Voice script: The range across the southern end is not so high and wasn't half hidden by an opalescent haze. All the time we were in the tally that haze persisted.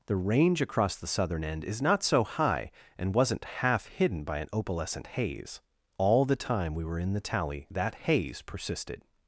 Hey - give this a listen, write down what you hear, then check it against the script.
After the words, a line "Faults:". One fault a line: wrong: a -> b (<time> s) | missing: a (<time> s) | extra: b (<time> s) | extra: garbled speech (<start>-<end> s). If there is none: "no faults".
The range across the southern end is not so high and wasn't half hidden by an opalescent haze. All the time we were in the tally that haze persisted.
Faults:
no faults